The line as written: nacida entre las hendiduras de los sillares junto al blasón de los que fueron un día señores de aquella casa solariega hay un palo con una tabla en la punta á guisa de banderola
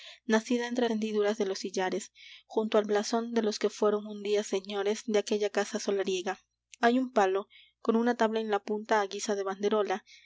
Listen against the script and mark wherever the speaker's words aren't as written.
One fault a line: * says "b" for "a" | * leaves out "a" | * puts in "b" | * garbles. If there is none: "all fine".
* leaves out "las"